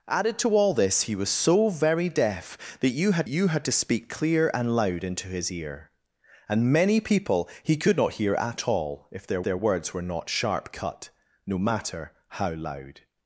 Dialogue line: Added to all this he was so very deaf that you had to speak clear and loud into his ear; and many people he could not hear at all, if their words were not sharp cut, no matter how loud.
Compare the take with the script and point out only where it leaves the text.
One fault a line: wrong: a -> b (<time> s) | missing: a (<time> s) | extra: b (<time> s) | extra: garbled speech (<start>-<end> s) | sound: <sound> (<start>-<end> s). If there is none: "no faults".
extra: you had (3.2 s)
extra: their (9.4 s)